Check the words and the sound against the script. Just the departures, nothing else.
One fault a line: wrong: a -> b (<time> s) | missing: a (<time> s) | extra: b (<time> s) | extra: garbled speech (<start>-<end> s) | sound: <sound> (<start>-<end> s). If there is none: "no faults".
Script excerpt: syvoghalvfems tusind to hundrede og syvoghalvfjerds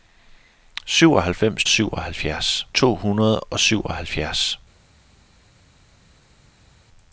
wrong: tusind -> syvoghalvfjerds (1.7 s)